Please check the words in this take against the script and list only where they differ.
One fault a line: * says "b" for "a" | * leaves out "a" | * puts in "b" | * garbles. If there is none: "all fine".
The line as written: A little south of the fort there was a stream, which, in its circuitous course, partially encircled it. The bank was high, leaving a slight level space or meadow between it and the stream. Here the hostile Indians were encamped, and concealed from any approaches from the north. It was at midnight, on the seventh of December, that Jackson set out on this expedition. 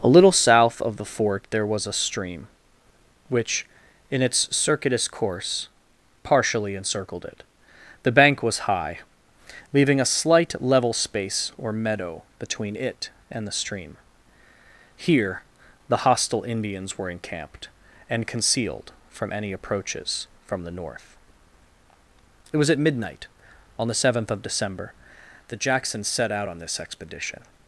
all fine